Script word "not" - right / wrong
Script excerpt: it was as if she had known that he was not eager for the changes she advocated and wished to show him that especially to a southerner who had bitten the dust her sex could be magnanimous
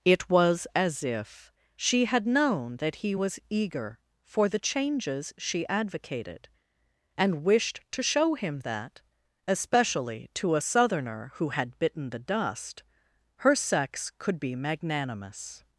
wrong